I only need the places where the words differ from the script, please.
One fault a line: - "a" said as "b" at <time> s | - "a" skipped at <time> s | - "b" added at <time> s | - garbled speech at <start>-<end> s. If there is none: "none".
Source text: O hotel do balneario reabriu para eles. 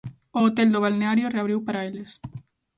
none